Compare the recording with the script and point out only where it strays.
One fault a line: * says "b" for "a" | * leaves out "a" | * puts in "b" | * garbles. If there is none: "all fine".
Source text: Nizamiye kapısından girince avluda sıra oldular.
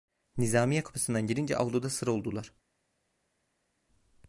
all fine